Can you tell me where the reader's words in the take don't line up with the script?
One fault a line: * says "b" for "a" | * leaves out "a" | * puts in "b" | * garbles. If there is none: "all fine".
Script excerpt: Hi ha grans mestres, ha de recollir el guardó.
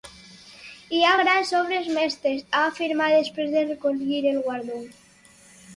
* puts in "obres"
* puts in "afirmat després"